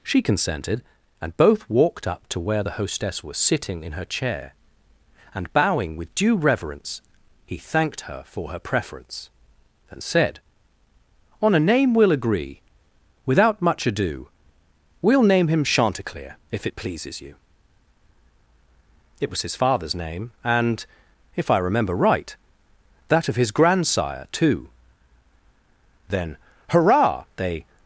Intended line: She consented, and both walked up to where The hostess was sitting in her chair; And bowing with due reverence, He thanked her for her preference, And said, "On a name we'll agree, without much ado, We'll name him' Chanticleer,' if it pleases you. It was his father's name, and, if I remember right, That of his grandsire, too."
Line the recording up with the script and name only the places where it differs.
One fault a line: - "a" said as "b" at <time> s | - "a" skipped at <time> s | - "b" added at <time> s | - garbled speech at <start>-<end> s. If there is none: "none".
- "Then Hurrah they" added at 26.1 s